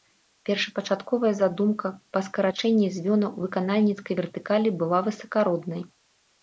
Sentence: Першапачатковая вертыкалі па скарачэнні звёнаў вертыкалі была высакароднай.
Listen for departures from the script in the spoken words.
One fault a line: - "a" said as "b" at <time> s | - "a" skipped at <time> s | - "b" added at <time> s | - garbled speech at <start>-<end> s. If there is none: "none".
- "вертыкалі" said as "задумка" at 1.4 s
- "выканальніцкай" added at 3.5 s